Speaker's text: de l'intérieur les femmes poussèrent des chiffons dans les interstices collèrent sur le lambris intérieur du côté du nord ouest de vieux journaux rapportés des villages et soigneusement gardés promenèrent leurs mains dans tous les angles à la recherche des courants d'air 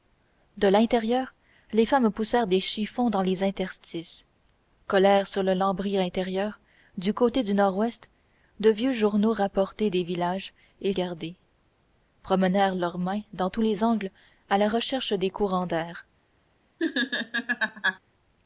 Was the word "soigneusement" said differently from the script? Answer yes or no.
yes